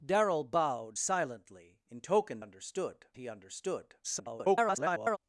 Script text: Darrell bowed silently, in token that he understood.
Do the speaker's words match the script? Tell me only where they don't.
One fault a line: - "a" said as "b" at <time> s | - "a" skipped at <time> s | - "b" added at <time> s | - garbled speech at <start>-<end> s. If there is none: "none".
- "that" said as "understood" at 2.4 s
- garbled speech at 4.0-5.2 s